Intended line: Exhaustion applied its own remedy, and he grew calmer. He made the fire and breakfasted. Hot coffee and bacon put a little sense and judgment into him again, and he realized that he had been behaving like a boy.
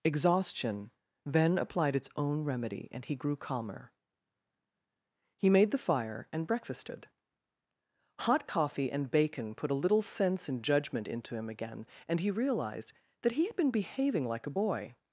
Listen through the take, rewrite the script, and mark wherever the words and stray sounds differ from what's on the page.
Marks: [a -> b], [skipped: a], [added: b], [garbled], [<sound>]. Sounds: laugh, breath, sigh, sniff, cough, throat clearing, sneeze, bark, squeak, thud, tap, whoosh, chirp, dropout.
Exhaustion [added: then] applied its own remedy, and he grew calmer. He made the fire and breakfasted. Hot coffee and bacon put a little sense and judgment into him again, and he realized that he had been behaving like a boy.